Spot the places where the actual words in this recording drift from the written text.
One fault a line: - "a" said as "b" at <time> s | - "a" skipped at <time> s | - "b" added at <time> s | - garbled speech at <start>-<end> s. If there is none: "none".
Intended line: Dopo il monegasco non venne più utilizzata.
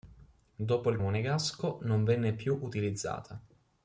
none